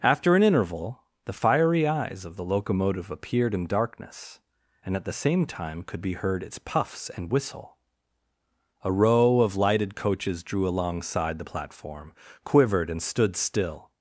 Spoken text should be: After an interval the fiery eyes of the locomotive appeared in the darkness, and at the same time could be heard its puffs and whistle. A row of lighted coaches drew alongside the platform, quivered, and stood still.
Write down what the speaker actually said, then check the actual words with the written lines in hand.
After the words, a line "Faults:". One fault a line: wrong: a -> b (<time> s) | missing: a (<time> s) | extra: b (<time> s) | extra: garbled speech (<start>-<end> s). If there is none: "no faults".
After an interval the fiery eyes of the locomotive appeared in darkness, and at the same time could be heard its puffs and whistle. A row of lighted coaches drew alongside the platform, quivered, and stood still.
Faults:
missing: the (3.7 s)